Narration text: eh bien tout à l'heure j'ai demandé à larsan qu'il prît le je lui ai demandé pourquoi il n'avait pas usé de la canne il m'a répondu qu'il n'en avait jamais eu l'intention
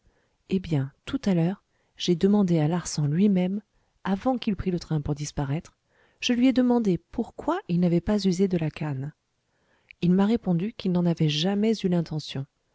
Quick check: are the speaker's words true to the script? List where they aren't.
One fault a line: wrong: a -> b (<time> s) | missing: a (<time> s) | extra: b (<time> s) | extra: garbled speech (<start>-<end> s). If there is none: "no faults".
extra: lui même avant (3.1 s)
extra: train pour disparaître (4.8 s)